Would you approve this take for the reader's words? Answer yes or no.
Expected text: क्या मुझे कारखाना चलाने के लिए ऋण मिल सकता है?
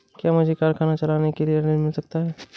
yes